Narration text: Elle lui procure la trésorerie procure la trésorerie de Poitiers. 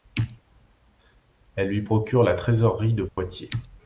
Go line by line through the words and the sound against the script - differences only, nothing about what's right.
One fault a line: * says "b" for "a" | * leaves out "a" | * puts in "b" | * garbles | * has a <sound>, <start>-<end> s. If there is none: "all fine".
* leaves out "procure la trésorerie"
* has a dropout, 3.1-3.2 s